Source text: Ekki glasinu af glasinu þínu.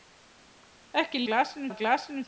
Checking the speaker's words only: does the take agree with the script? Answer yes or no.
yes